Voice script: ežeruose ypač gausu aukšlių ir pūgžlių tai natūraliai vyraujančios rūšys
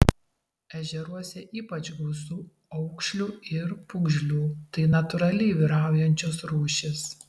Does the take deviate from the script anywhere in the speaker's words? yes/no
no